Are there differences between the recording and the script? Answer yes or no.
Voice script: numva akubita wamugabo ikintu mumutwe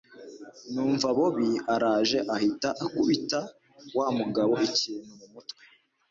yes